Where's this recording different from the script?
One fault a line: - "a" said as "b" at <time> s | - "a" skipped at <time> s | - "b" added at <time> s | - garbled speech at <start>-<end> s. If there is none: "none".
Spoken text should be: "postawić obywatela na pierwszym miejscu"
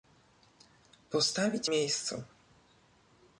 - "obywatela na pierwszym" skipped at 1.7 s